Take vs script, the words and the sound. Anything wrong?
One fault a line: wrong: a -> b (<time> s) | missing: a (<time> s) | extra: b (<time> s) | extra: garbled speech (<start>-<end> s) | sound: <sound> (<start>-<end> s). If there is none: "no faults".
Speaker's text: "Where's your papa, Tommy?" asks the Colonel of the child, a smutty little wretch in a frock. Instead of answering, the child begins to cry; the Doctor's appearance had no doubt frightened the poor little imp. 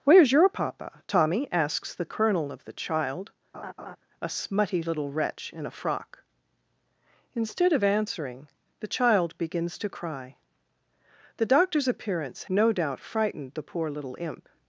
sound: laugh (3.5-4.0 s)
missing: had (12.5 s)